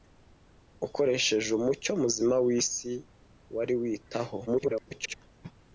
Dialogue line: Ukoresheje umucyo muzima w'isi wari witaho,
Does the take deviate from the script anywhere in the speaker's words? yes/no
yes